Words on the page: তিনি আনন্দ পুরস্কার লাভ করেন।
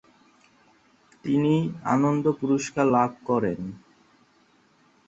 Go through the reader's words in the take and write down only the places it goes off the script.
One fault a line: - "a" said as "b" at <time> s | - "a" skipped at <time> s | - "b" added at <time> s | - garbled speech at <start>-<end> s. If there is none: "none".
none